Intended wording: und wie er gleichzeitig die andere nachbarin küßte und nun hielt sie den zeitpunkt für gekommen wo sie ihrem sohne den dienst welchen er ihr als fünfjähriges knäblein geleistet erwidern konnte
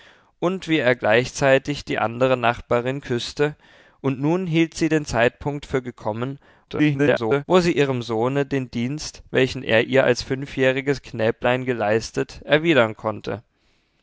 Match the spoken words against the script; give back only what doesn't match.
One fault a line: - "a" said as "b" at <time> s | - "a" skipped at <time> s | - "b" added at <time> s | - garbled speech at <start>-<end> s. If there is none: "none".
- garbled speech at 6.7-7.4 s